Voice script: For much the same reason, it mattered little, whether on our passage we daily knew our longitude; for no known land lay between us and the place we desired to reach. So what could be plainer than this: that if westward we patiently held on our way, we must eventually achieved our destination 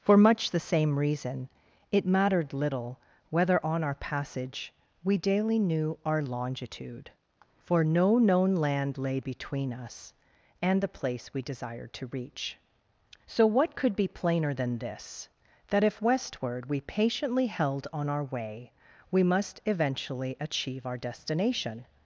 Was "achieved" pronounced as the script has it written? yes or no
no